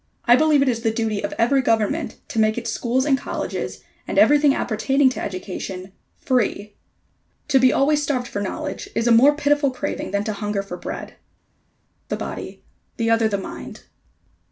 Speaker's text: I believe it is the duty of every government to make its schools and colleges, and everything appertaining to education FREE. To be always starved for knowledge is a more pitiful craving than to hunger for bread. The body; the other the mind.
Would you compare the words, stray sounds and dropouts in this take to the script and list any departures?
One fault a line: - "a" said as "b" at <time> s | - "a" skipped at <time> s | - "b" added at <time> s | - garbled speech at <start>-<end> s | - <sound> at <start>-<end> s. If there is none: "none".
none